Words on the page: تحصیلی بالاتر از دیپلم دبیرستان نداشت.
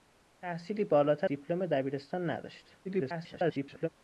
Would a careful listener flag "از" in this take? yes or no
yes